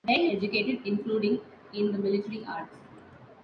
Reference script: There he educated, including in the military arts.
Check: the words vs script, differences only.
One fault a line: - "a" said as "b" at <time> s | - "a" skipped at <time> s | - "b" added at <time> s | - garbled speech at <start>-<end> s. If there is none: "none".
none